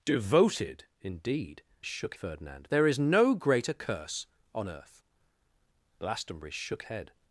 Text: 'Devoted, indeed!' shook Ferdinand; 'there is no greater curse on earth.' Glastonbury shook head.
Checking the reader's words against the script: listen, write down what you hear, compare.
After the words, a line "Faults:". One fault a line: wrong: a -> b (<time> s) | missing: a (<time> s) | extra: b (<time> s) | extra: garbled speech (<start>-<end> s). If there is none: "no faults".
'Devoted, indeed!' shook Ferdinand; 'there is no greater curse on earth.' Glastonbury shook head.
Faults:
no faults